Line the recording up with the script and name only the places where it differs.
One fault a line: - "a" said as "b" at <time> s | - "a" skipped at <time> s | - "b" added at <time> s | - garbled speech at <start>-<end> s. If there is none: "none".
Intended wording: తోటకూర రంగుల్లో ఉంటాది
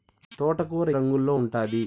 none